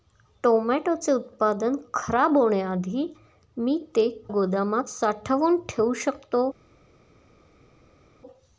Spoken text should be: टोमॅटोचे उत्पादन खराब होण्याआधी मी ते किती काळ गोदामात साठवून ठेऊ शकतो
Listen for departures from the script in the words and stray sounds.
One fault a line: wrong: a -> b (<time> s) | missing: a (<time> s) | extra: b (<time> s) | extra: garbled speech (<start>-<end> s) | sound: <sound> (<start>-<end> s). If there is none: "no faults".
missing: किती काळ (4.1 s)